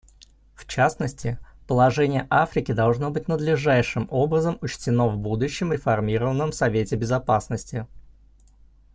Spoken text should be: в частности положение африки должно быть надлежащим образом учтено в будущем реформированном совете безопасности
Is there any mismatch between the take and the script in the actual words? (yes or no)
no